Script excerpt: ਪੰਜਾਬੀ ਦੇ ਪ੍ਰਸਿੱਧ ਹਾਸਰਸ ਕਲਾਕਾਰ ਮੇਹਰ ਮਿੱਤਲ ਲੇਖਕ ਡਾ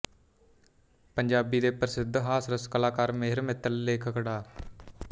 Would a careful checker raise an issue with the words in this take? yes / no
no